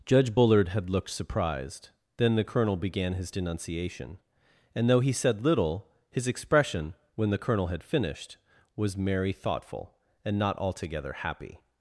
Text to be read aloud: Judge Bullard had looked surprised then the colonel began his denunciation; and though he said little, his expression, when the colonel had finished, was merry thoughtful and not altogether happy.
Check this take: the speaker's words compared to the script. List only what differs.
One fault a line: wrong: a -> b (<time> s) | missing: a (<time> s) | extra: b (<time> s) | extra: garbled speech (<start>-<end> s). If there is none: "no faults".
no faults